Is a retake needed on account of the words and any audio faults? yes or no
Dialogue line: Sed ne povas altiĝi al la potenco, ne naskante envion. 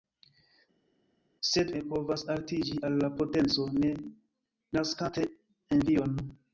no